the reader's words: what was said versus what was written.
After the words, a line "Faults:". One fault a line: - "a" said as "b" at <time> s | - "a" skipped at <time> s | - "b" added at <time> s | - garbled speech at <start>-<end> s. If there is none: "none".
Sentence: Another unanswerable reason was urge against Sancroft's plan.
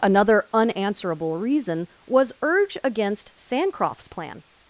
Another unanswerable reason was urge against Sancroft's plan.
Faults:
none